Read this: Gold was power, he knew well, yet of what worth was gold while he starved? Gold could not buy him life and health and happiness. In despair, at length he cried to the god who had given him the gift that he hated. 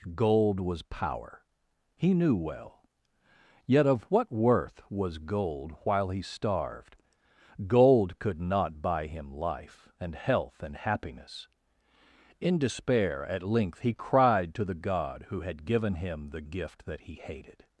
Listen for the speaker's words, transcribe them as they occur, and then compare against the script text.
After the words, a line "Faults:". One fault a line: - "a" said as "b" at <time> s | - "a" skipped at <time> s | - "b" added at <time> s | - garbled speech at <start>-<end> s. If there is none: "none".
Gold was power, he knew well, yet of what worth was gold while he starved? Gold could not buy him life and health and happiness. In despair, at length he cried to the god who had given him the gift that he hated.
Faults:
none